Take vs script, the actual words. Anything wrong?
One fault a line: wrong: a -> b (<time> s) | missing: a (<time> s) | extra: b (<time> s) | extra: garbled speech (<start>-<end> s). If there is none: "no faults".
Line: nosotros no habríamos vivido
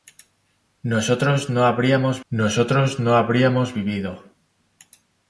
extra: nosotros no habríamos (2.3 s)